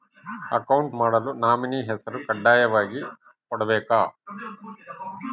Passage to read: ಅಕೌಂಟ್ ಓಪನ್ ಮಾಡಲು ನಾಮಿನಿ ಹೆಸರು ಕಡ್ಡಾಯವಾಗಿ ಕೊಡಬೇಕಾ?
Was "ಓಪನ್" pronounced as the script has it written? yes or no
no